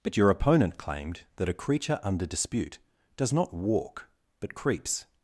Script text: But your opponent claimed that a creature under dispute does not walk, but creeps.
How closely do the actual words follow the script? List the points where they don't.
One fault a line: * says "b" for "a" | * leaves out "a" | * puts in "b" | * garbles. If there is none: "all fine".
all fine